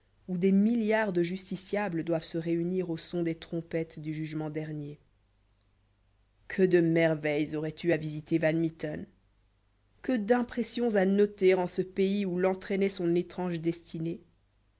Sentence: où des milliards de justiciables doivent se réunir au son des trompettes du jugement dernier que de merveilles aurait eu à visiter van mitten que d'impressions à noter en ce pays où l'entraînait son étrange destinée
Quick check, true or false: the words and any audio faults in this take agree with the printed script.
true